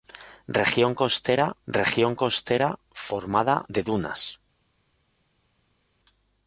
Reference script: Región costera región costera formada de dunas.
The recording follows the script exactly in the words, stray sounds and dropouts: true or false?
true